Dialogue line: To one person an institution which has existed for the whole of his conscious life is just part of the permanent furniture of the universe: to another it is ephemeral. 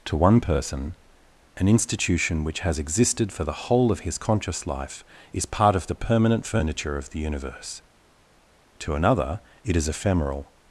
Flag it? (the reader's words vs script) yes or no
yes